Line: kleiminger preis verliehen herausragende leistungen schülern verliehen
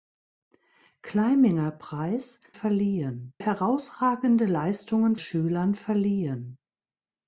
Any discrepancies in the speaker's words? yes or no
no